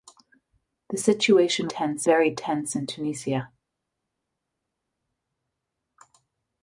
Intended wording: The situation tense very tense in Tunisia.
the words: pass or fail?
pass